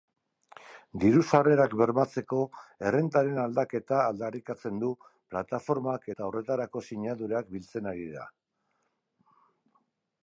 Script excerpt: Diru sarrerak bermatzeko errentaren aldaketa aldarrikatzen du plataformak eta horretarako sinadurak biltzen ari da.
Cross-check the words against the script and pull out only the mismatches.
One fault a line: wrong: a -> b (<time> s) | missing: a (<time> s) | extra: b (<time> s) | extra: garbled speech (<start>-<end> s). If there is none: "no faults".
no faults